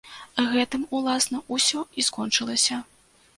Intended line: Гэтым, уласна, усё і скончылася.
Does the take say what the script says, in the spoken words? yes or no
yes